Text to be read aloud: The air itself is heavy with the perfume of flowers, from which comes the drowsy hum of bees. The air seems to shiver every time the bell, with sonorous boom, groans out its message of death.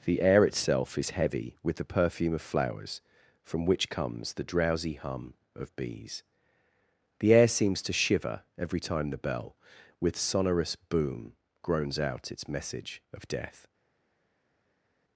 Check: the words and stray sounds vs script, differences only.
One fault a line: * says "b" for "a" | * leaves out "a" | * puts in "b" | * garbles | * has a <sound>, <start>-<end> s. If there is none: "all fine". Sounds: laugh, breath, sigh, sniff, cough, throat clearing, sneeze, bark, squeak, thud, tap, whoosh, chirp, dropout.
all fine